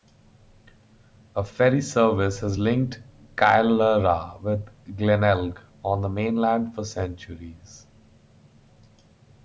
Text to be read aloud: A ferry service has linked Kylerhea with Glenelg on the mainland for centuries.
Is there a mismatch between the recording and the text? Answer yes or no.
no